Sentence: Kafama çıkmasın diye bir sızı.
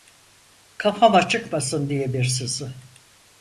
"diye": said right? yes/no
yes